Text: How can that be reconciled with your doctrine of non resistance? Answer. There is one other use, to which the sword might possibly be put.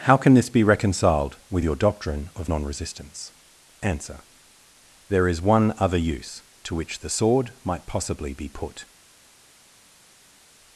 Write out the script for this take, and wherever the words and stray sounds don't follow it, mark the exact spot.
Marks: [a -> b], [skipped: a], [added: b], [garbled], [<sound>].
How can [that -> this] be reconciled with your doctrine of non resistance? Answer. There is one other use, to which the sword might possibly be put.